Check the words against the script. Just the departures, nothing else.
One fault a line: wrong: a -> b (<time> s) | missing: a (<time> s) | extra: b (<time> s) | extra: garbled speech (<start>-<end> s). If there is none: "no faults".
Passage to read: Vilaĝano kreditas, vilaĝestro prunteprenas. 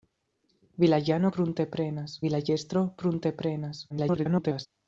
wrong: kreditas -> prunteprenas (1.4 s)
extra: garbled speech (3.9-4.7 s)